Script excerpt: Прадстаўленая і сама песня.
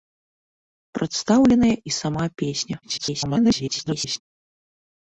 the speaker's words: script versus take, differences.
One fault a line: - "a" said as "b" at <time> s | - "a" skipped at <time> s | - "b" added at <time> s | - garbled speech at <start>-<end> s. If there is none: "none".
- garbled speech at 2.8-4.2 s